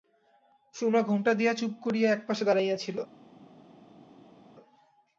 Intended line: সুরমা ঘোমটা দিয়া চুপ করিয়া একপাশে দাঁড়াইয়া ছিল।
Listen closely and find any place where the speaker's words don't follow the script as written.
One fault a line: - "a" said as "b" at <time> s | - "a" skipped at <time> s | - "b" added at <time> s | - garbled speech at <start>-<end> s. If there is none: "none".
none